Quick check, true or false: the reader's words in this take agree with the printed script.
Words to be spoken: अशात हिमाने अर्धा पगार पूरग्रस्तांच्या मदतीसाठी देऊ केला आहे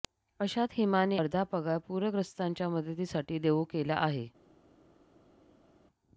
true